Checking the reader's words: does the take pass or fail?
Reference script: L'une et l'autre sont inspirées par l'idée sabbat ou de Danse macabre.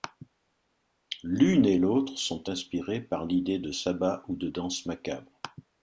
fail